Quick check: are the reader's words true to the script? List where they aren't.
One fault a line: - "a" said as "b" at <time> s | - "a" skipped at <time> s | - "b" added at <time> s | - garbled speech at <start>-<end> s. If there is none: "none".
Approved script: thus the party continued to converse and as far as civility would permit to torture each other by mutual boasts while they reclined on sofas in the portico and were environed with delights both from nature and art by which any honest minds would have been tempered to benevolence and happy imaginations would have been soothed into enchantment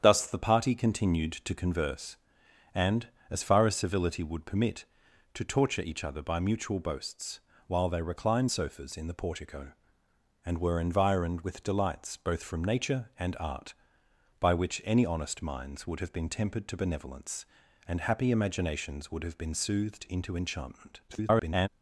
- "on" skipped at 8.5 s
- garbled speech at 21.1-21.7 s